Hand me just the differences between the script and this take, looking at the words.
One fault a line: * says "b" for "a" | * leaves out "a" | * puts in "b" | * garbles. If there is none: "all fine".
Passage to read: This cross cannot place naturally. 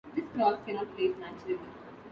all fine